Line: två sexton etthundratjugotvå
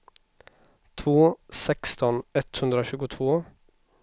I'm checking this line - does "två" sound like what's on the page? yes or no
yes